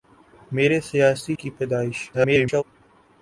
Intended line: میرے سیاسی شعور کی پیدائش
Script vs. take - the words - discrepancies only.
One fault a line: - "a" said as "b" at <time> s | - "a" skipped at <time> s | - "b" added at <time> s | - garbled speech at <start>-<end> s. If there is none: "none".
- "شعور" skipped at 1.4 s
- garbled speech at 2.1-2.6 s